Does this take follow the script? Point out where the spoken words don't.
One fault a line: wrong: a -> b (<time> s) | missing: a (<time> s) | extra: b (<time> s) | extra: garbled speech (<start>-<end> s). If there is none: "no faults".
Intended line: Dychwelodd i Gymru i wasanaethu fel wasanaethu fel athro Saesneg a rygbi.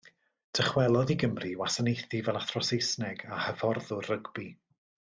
missing: wasanaethu fel (2.4 s)
extra: hyfforddwr (3.5 s)